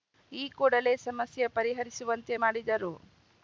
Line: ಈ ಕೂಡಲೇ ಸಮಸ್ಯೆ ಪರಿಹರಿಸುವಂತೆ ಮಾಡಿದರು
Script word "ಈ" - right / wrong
right